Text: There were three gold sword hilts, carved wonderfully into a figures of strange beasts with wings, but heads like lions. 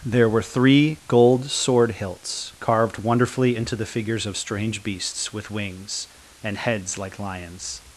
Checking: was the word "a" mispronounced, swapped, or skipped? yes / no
yes